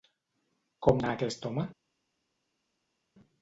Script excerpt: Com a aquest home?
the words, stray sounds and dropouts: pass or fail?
pass